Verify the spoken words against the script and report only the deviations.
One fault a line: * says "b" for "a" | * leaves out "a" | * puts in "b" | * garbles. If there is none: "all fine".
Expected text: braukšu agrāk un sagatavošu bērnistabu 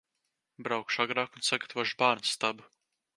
all fine